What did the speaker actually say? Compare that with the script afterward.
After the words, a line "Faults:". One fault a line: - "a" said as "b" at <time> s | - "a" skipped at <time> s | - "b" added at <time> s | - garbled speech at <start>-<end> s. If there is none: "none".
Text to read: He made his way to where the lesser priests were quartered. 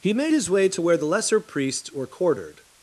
He made his way to where the lesser priests were quartered.
Faults:
none